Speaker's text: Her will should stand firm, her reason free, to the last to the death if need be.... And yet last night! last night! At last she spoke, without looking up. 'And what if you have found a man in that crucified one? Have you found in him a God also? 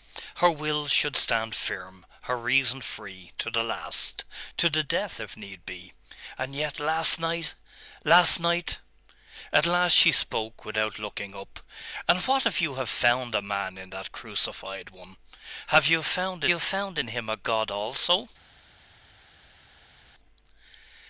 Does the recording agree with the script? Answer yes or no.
no